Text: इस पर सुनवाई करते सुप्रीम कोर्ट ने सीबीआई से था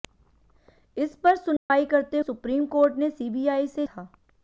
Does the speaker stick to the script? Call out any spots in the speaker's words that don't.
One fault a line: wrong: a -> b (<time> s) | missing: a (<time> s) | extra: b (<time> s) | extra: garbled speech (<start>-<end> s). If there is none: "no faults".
no faults